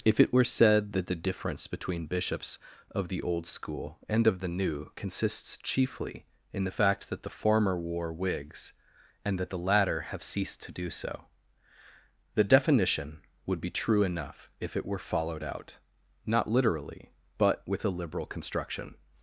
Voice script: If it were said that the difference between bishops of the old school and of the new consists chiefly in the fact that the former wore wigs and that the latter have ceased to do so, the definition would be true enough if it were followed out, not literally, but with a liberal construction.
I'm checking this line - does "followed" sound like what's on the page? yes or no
yes